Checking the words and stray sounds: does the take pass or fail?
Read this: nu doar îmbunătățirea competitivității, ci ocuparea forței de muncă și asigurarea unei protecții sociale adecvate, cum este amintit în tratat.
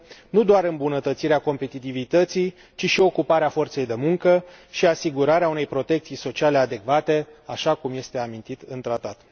fail